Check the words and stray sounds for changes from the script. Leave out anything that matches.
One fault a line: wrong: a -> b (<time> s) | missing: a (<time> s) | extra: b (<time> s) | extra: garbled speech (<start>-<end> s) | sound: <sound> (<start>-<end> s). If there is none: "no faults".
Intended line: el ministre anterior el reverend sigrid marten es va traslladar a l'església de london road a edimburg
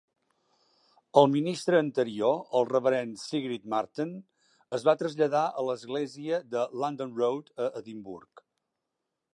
no faults